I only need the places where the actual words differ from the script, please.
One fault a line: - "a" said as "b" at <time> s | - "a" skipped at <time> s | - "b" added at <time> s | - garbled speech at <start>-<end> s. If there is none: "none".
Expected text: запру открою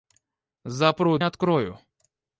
none